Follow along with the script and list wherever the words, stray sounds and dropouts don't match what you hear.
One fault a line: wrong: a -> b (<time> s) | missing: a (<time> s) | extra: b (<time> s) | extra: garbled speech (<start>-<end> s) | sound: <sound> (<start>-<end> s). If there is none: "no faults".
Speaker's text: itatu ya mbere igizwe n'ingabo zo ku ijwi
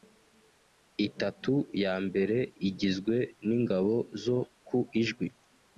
no faults